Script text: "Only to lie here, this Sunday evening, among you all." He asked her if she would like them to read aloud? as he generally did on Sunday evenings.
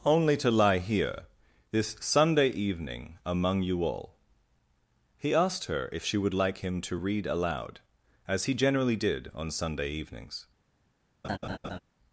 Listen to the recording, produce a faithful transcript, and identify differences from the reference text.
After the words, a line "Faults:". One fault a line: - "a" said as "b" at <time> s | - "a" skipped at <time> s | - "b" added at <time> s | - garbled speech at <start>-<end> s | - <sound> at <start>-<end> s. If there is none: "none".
"Only to lie here, this Sunday evening, among you all." He asked her if she would like him to read aloud? as he generally did on Sunday evenings.
Faults:
- "them" said as "him" at 6.6 s
- laugh at 11.2-11.8 s